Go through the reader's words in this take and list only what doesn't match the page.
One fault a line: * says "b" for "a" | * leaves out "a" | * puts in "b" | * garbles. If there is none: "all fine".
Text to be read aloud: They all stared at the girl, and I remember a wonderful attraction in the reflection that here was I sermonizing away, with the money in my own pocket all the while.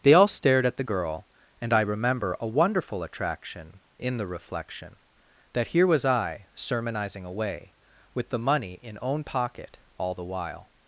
* leaves out "my"